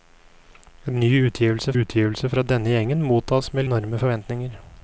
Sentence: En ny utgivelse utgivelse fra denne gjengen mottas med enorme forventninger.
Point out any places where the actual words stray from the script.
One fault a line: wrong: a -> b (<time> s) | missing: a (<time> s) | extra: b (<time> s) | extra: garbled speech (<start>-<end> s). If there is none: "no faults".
no faults